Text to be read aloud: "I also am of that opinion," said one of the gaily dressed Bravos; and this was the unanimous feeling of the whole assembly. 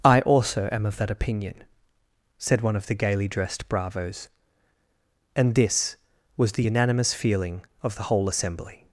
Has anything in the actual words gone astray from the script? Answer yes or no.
no